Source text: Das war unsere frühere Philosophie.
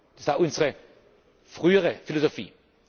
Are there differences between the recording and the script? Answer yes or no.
no